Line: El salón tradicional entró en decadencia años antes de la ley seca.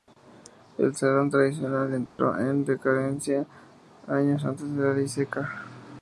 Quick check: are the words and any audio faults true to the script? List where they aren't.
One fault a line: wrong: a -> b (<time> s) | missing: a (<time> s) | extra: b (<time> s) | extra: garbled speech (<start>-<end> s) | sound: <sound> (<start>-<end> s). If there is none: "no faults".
sound: dropout (2.1-2.2 s)